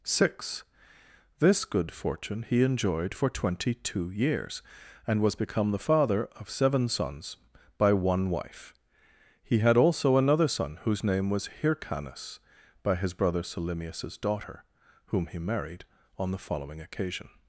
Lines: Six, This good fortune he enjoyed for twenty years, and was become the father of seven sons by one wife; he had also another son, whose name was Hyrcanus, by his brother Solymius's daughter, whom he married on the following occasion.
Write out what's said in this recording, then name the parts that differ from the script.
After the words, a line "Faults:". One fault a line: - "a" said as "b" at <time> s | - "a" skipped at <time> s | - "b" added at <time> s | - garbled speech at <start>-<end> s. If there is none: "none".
Six, This good fortune he enjoyed for twenty two years, and was become the father of seven sons by one wife; he had also another son, whose name was Hyrcanus, by his brother Solymius's daughter, whom he married on the following occasion.
Faults:
- "two" added at 3.8 s